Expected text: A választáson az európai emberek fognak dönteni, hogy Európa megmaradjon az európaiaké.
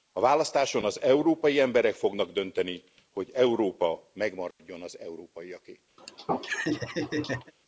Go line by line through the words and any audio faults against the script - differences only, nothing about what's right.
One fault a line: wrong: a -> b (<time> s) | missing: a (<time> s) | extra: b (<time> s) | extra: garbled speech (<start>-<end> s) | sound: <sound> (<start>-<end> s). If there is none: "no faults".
sound: dropout (4.5-4.6 s)
sound: laugh (6.0-7.5 s)